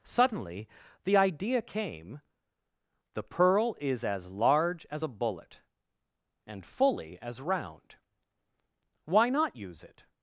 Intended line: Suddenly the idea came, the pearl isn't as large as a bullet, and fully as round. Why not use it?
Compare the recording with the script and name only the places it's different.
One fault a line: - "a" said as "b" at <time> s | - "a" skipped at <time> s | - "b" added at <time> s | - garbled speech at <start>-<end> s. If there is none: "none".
- "isn't" said as "is" at 3.8 s